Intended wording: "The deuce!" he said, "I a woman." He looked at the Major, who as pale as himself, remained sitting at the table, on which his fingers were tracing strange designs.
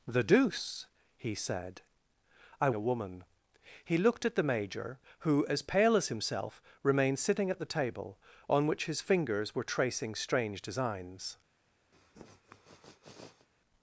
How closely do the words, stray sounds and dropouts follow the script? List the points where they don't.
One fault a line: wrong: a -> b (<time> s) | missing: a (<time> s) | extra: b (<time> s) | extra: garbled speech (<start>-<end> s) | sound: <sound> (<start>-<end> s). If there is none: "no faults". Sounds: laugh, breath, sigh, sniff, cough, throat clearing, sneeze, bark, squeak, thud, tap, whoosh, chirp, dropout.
sound: sniff (11.9-13.5 s)